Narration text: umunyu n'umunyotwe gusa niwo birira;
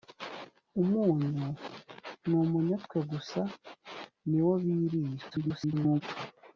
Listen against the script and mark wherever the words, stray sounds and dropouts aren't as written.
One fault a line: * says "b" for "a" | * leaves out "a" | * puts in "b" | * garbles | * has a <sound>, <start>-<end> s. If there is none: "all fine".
* garbles